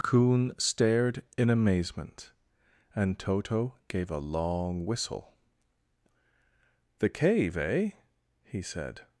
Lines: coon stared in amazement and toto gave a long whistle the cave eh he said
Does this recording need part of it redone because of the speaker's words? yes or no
no